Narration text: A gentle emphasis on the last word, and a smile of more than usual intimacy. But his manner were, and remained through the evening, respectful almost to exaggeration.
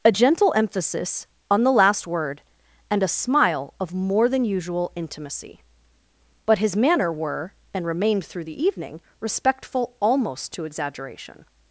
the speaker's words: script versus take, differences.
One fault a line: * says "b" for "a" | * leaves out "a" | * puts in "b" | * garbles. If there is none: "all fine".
all fine